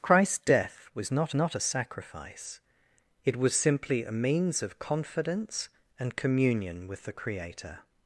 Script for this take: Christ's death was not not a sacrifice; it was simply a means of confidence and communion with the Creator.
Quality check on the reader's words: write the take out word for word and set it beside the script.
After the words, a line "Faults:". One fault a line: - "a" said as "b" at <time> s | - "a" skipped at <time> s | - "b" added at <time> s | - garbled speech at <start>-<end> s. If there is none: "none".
Christ's death was not not a sacrifice; it was simply a means of confidence and communion with the Creator.
Faults:
none